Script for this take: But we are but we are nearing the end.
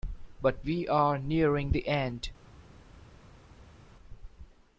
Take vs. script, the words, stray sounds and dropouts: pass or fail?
fail